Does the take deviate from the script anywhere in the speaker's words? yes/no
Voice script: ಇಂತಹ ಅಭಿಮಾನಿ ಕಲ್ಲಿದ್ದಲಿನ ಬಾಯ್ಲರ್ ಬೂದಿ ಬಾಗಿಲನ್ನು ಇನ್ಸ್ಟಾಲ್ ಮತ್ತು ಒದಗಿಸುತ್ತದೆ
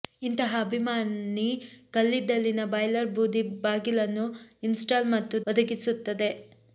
no